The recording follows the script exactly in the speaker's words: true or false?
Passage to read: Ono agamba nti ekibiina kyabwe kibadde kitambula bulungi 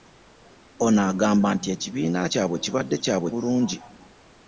false